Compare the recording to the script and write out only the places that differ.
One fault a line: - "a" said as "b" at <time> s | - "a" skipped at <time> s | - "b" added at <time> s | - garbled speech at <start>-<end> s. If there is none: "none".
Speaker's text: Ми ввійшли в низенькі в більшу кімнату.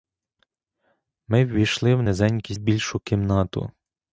none